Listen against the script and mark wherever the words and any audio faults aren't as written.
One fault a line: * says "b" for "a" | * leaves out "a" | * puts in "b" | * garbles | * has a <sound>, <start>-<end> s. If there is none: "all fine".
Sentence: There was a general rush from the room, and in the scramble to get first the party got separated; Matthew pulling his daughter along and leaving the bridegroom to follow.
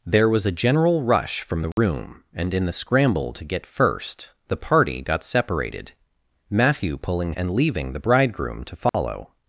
* has a dropout, 1.7-1.8 s
* leaves out "his daughter along"
* has a dropout, 8.9-8.9 s